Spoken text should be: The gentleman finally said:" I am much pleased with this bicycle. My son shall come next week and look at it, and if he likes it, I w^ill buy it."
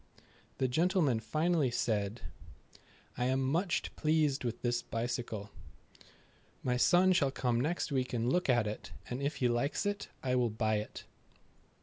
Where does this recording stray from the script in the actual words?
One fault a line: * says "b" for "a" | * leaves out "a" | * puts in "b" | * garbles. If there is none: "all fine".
all fine